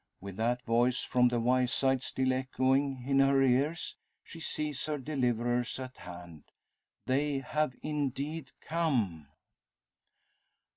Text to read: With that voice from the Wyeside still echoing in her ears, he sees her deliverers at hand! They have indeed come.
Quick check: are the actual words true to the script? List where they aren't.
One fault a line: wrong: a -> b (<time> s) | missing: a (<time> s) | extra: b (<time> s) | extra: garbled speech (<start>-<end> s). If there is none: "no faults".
wrong: he -> she (4.2 s)